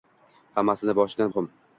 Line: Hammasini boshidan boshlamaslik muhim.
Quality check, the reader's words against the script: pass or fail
fail